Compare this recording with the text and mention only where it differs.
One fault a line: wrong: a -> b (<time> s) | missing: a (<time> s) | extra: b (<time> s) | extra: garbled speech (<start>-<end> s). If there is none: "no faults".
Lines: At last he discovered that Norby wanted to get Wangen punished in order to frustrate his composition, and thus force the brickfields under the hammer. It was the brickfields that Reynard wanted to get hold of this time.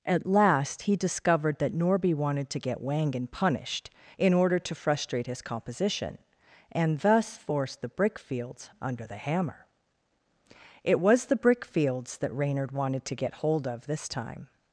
no faults